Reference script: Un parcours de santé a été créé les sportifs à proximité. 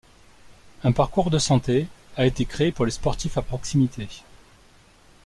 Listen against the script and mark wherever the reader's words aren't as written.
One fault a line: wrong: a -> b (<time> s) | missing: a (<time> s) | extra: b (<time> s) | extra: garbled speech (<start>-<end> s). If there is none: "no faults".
extra: pour (2.7 s)